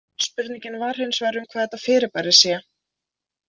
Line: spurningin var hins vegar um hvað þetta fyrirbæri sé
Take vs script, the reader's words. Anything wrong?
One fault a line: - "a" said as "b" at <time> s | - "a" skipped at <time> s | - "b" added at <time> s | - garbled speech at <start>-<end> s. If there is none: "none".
none